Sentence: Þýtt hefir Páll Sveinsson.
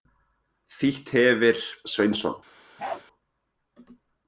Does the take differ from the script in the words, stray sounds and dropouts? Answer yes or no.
yes